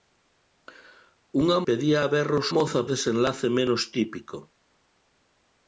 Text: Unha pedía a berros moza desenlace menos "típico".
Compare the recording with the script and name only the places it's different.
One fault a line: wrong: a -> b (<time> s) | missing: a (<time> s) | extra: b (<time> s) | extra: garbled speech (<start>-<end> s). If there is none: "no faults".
no faults